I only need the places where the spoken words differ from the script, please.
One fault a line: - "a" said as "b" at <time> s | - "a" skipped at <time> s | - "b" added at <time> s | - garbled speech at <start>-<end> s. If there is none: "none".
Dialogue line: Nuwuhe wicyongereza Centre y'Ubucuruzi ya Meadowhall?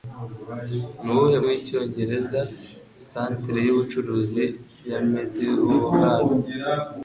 none